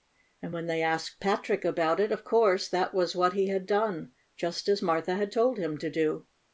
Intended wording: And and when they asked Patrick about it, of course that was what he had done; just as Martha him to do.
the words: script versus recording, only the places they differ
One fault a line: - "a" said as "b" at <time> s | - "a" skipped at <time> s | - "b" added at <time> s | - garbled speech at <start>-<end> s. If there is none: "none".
- "and" skipped at 0.6 s
- "had told" added at 5.2 s